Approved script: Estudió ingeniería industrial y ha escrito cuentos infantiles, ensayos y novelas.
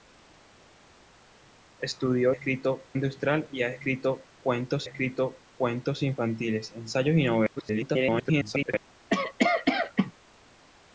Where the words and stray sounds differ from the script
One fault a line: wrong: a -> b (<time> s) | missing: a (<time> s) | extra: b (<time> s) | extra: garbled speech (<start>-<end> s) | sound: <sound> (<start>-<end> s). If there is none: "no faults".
wrong: ingeniería -> escrito (2.3 s)
extra: escrito cuentos (4.8 s)
extra: garbled speech (7.6-8.7 s)
sound: cough (9.1-10.1 s)